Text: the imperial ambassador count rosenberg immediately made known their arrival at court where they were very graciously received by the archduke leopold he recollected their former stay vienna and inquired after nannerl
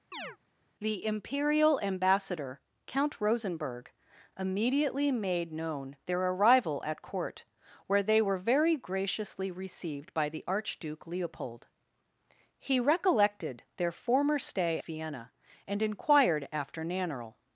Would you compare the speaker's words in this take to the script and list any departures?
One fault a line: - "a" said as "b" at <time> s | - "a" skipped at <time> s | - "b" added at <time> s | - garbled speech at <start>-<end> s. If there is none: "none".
none